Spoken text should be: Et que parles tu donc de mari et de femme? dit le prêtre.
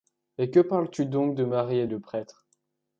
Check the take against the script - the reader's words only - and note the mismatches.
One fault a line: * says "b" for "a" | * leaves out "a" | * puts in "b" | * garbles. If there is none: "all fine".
* leaves out "de femme dit"